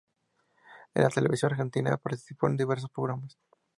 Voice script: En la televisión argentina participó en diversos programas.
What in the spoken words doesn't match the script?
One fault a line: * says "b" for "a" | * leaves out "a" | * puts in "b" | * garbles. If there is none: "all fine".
all fine